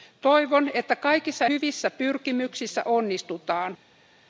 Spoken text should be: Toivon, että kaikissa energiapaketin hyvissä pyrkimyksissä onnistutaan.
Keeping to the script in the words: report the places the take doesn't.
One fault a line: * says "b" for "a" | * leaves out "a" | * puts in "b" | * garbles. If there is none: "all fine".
* leaves out "energiapaketin"